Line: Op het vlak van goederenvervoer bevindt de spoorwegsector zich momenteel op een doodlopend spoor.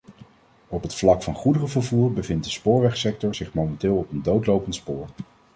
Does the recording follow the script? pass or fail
pass